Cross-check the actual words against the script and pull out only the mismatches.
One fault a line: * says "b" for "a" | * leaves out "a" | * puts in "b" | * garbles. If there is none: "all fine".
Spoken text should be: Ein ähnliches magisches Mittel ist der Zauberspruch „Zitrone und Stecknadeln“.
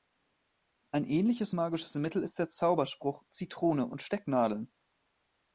all fine